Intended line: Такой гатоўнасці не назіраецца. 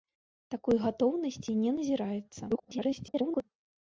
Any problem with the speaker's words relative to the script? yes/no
yes